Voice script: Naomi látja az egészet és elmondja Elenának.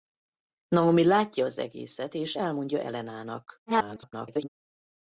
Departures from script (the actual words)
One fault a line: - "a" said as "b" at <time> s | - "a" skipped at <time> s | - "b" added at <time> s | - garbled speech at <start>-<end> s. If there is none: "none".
- garbled speech at 3.7-4.5 s